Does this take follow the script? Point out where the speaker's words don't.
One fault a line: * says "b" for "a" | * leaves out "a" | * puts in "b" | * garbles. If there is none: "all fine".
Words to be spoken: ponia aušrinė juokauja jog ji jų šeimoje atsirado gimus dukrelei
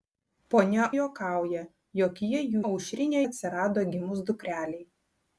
* leaves out "aušrinė"
* says "aušrinė" for "šeimoje"